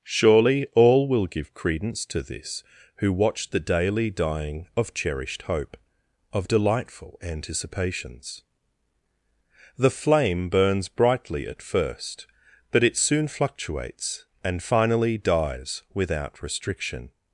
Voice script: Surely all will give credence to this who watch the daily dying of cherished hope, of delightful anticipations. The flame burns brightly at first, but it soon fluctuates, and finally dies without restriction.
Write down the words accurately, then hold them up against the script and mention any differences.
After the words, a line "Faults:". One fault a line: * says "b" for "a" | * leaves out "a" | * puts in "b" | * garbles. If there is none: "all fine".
Surely all will give credence to this who watch the daily dying of cherished hope, of delightful anticipations. The flame burns brightly at first, but it soon fluctuates, and finally dies without restriction.
Faults:
all fine